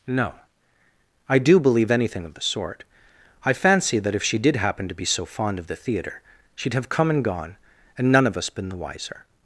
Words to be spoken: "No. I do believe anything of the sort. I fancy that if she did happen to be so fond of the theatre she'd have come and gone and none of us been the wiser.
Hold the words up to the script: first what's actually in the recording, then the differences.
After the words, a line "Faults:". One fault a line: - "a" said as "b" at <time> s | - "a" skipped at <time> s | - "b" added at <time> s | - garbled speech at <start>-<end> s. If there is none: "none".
"No. I do believe anything of the sort. I fancy that if she did happen to be so fond of the theatre she'd have come and gone and none of us been the wiser.
Faults:
none